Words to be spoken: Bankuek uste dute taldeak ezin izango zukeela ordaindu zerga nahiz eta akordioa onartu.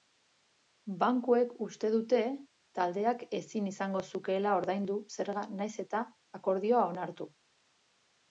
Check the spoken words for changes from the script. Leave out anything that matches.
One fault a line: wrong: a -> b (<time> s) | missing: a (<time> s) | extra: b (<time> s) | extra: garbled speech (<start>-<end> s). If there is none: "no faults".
no faults